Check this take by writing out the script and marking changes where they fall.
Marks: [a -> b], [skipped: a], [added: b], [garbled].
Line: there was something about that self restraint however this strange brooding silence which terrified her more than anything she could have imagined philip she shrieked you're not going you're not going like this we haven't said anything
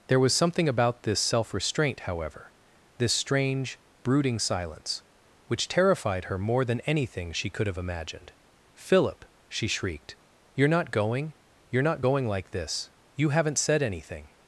there was something about [that -> this] self restraint however this strange brooding silence which terrified her more than anything she could have imagined philip she shrieked you're not going you're not going like this [we -> you] haven't said anything